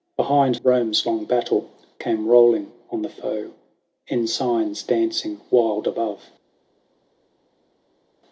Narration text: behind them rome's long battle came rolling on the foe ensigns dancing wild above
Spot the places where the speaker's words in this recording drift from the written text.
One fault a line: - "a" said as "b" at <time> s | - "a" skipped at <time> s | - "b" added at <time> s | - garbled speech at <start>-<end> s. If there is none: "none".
- "them" skipped at 0.6 s